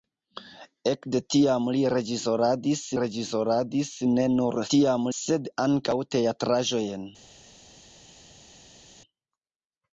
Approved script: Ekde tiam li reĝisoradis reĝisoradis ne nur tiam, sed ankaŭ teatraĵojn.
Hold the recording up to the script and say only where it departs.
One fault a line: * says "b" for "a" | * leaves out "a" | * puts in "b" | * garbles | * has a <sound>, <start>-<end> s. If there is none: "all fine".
all fine